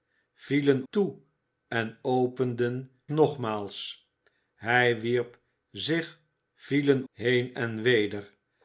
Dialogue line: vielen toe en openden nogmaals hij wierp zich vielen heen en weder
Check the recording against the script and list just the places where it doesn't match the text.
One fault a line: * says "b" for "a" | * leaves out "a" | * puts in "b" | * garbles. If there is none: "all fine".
all fine